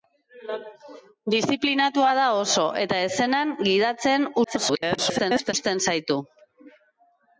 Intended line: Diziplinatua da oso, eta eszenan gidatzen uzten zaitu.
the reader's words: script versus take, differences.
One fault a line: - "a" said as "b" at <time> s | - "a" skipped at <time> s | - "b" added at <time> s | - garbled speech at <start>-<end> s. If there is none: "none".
- garbled speech at 4.4-5.5 s